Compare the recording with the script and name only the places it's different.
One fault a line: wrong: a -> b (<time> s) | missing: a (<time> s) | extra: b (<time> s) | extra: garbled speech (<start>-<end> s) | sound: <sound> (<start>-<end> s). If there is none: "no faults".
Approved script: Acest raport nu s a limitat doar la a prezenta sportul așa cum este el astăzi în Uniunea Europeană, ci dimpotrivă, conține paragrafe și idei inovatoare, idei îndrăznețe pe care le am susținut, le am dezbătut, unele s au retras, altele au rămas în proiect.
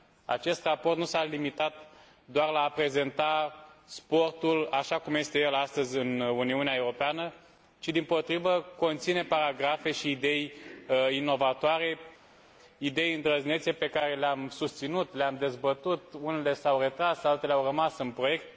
no faults